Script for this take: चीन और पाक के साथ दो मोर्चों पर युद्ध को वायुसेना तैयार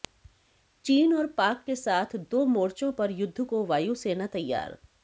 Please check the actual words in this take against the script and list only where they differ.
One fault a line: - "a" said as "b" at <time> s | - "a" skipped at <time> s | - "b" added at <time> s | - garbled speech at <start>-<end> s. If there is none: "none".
none